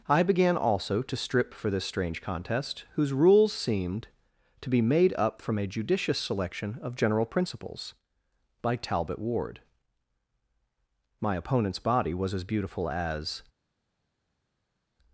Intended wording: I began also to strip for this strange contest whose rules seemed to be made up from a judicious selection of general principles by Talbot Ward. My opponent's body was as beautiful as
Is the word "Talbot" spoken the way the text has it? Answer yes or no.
yes